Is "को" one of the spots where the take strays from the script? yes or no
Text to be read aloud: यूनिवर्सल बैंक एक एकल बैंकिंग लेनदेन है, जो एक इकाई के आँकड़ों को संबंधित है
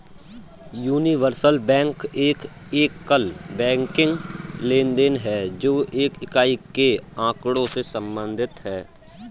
yes